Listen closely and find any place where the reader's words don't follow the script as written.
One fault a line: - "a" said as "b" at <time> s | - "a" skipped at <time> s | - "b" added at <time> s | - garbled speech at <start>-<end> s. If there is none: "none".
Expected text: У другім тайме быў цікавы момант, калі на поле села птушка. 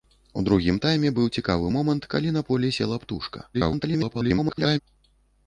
- garbled speech at 3.5-4.8 s